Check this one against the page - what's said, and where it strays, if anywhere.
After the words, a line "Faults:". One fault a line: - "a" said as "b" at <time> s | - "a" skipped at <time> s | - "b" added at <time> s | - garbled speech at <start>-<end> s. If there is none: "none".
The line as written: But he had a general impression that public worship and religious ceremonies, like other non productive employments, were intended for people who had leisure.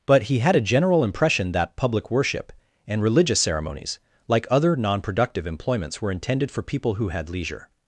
But he had a general impression that public worship and religious ceremonies, like other non productive employments, were intended for people who had leisure.
Faults:
none